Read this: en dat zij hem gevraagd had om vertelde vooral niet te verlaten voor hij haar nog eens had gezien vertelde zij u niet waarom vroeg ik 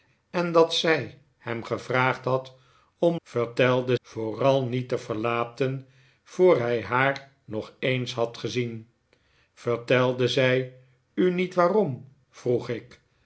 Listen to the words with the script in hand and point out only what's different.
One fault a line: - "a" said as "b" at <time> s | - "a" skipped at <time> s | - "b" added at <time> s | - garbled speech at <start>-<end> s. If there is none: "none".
none